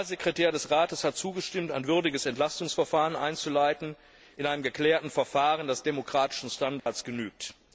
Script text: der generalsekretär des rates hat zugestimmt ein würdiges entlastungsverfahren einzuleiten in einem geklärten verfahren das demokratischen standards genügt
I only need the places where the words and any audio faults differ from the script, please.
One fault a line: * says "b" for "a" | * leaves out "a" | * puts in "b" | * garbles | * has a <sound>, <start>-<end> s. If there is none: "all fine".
* has a dropout, 6.8-6.9 s